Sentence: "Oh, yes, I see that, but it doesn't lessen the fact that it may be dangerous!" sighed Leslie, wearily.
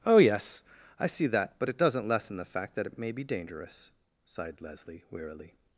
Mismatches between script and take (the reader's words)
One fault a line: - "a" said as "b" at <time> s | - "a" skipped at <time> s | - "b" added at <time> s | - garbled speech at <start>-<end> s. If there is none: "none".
- "it" added at 2.9 s